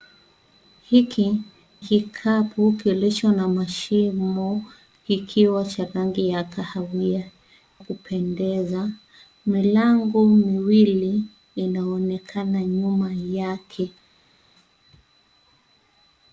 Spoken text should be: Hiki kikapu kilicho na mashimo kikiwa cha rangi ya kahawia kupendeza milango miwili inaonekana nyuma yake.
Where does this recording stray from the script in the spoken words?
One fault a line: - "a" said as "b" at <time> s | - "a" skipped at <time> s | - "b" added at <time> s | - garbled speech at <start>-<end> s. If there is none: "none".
none